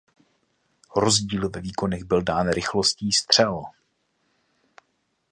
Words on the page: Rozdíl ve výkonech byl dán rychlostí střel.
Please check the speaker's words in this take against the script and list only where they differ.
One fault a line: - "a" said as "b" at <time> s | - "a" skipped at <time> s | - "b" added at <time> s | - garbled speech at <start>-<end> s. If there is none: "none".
none